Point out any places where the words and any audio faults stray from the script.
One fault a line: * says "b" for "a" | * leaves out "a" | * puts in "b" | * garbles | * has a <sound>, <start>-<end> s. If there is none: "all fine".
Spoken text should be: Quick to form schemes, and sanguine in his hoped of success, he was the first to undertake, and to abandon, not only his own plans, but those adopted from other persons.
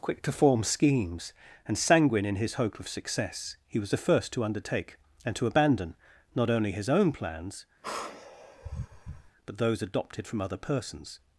* says "hope" for "hoped"
* has a sigh, 7.8-9.3 s